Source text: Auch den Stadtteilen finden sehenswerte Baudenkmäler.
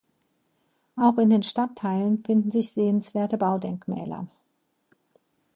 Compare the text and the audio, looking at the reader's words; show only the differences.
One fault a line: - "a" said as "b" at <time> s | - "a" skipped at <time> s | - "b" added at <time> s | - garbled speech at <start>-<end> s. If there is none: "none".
- "in" added at 1.2 s
- "sich" added at 2.5 s